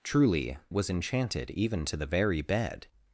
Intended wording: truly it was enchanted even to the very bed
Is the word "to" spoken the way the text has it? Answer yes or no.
yes